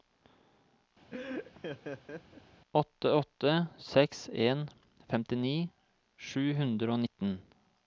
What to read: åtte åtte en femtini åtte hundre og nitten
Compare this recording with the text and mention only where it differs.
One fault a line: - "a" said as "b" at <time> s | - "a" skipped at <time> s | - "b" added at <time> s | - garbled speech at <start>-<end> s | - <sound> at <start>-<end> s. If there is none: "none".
- laugh at 1.1-2.4 s
- "seks" added at 3.9 s
- "åtte" said as "sju" at 6.3 s